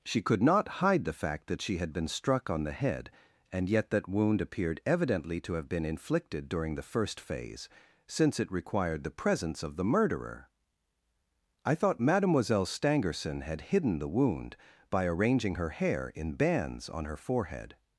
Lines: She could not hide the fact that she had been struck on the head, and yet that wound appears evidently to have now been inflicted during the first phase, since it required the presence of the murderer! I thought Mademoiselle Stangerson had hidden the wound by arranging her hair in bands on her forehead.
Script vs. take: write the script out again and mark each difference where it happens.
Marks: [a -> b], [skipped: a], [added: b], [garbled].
She could not hide the fact that she had been struck on the head, and yet that wound [appears -> appeared] evidently to have [skipped: now] been inflicted during the first phase, since it required the presence of the murderer! I thought Mademoiselle Stangerson had hidden the wound by arranging her hair in bands on her forehead.